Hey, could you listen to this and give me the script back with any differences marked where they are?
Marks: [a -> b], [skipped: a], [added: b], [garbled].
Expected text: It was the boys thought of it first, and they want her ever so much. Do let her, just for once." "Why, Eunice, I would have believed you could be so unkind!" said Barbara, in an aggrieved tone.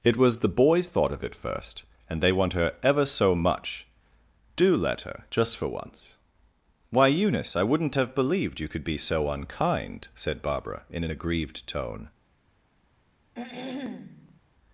It was the boys thought of it first, and they want her ever so much. Do let her, just for once." "Why, Eunice, I [would -> wouldn't] have believed you could be so unkind!" said Barbara, in an aggrieved tone.